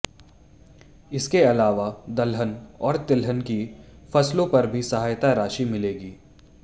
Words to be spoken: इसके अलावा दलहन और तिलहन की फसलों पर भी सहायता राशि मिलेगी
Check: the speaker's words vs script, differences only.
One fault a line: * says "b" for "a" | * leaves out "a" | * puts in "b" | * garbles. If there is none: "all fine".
all fine